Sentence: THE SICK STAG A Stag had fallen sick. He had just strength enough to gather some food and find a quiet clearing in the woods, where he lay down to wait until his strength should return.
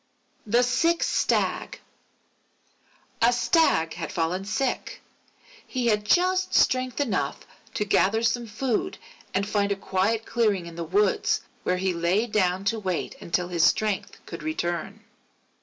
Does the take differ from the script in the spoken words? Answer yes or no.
no